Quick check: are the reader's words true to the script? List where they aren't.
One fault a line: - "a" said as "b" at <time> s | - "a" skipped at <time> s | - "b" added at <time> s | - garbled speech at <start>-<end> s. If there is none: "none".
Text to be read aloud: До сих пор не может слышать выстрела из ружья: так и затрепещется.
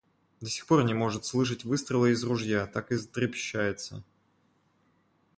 none